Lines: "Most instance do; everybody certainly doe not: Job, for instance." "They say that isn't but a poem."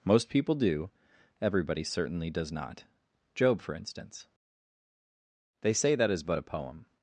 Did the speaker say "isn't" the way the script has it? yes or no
no